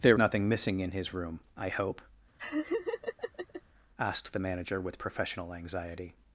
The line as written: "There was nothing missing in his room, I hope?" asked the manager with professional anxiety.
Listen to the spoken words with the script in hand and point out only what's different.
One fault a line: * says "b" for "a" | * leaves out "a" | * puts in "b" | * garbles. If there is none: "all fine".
* leaves out "was"